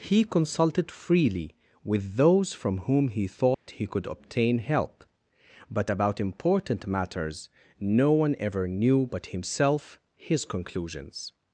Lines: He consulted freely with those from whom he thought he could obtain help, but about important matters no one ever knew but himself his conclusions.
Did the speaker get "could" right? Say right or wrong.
right